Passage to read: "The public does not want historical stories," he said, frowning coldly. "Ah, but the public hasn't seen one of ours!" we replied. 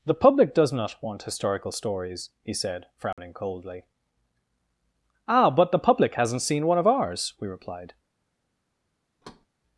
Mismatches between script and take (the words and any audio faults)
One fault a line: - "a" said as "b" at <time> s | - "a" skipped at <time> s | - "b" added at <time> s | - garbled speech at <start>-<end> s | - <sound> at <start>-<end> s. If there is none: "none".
- dropout at 3.1-3.2 s
- thud at 9.2-9.5 s